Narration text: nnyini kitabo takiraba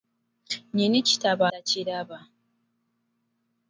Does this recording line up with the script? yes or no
yes